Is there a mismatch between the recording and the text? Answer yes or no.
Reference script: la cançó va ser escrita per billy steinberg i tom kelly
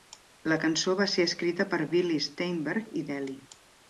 yes